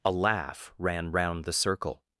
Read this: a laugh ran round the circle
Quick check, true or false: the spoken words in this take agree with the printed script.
true